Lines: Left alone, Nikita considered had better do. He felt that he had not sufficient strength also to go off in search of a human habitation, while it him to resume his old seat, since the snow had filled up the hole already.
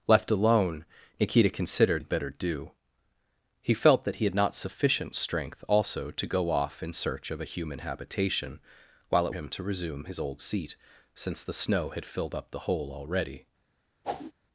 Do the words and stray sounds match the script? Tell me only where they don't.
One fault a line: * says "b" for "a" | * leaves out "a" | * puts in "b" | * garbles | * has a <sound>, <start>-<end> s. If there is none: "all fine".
* has a whoosh, 14.0-14.3 s